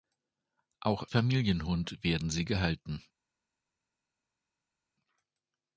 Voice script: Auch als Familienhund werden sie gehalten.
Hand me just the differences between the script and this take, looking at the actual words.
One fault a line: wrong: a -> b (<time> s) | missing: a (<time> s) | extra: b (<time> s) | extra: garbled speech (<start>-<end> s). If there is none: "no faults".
missing: als (1.1 s)